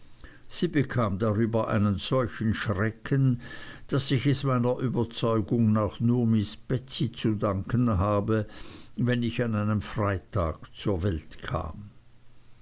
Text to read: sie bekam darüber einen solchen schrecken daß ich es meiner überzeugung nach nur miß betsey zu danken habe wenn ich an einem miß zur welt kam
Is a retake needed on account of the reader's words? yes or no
yes